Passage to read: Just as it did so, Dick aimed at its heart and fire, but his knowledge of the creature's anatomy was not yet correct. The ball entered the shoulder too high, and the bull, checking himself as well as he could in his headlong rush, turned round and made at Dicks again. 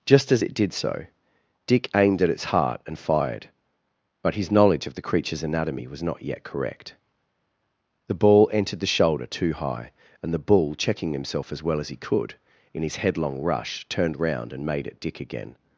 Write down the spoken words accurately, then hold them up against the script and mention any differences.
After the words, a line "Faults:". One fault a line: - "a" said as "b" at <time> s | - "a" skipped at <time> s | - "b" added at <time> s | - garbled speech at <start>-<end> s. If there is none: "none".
Just as it did so, Dick aimed at its heart and fired, but his knowledge of the creature's anatomy was not yet correct. The ball entered the shoulder too high, and the bull, checking himself as well as he could in his headlong rush, turned round and made at Dick again.
Faults:
- "fire" said as "fired" at 3.0 s
- "Dicks" said as "Dick" at 15.0 s